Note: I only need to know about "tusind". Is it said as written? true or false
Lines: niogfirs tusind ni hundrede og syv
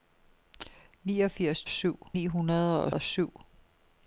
false